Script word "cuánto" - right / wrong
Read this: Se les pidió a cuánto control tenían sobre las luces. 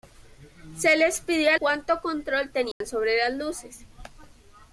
right